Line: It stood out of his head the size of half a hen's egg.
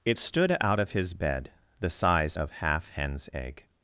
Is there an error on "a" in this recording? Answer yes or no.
yes